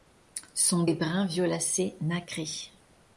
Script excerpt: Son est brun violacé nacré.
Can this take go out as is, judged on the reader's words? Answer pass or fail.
pass